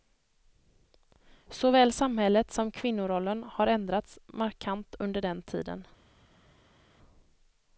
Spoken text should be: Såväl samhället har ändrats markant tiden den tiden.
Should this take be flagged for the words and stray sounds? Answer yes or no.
yes